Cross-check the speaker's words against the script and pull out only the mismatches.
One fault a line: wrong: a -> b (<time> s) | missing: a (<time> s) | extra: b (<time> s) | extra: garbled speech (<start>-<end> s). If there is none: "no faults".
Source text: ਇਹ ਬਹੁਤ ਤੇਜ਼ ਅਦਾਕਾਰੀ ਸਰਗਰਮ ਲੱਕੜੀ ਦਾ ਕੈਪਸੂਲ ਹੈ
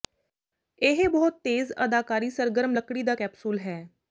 no faults